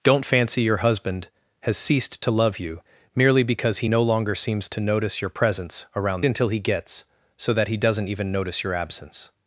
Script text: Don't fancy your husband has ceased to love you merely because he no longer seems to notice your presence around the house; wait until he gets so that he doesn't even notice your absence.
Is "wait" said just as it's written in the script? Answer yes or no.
no